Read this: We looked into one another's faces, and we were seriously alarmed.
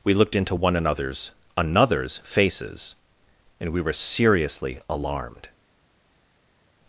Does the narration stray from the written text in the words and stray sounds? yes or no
yes